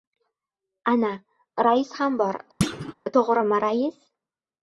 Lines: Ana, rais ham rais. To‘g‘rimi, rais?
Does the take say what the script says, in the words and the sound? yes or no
no